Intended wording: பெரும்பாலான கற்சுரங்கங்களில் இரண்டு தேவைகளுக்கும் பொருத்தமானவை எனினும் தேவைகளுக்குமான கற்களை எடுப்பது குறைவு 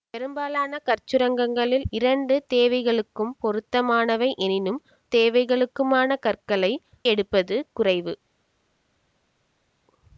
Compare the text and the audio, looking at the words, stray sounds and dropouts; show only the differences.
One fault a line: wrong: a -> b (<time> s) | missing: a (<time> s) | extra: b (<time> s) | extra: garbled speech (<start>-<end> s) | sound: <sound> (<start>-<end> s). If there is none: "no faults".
no faults